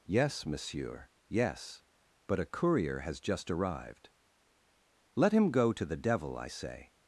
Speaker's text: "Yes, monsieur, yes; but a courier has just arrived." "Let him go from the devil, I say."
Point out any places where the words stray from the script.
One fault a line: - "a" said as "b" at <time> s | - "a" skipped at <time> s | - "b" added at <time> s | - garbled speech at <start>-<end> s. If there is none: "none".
- "from" said as "to" at 5.7 s